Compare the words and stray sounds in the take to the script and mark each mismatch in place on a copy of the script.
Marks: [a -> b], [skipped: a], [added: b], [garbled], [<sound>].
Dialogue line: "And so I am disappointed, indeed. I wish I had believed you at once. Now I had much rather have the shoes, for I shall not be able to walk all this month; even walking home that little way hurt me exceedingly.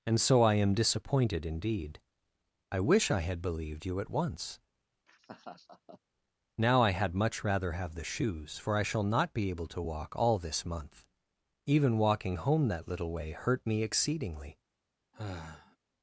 "And so I am disappointed, indeed. I wish I had believed you at once. [laugh] Now I had much rather have the shoes, for I shall not be able to walk all this month; even walking home that little way hurt me exceedingly. [sigh]